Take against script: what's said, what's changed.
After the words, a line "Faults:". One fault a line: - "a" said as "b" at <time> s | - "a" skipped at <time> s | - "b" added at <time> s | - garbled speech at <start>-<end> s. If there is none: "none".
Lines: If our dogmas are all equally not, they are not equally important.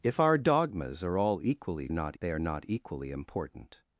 If our dogmas are all equally not, they are not equally important.
Faults:
none